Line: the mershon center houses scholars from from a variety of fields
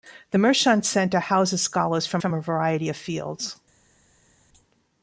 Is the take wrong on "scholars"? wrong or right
right